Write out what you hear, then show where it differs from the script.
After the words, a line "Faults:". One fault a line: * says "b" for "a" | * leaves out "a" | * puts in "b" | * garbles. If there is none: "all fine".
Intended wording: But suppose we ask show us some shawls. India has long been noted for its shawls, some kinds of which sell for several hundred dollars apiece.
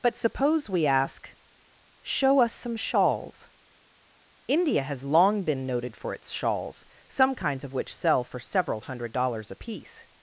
But suppose we ask show us some shawls. India has long been noted for its shawls, some kinds of which sell for several hundred dollars apiece.
Faults:
all fine